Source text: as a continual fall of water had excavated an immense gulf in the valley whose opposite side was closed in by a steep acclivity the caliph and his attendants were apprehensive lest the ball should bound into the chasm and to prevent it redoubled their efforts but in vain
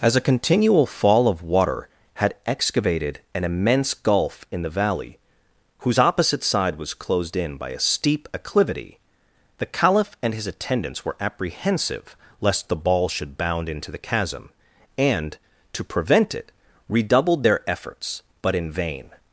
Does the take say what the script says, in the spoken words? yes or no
yes